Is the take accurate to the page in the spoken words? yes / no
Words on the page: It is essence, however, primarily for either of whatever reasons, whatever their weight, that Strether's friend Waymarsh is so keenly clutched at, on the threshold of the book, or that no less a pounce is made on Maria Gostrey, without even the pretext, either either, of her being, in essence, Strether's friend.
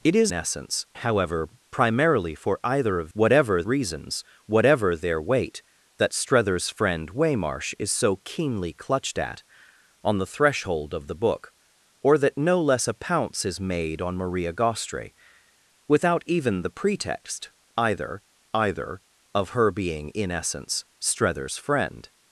yes